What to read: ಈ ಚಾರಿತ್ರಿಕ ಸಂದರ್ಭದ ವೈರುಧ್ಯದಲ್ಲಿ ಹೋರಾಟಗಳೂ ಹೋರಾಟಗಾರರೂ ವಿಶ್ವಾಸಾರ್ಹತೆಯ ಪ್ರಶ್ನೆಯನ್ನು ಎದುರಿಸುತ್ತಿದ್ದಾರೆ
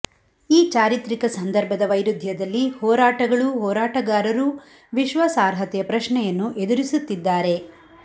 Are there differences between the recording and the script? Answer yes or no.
no